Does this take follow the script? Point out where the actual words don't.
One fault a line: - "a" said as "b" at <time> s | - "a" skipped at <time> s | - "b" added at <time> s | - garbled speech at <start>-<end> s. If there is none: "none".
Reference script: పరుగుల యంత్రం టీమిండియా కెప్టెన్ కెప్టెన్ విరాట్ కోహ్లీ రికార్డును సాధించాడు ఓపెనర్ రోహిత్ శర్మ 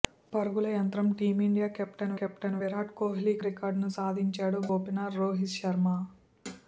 none